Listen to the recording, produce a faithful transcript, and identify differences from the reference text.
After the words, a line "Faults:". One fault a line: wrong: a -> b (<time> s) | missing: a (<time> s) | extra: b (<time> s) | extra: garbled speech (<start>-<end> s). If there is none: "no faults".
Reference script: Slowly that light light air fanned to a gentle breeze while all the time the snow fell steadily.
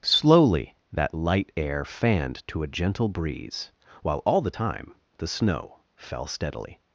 Slowly that light air fanned to a gentle breeze while all the time the snow fell steadily.
Faults:
missing: light (1.5 s)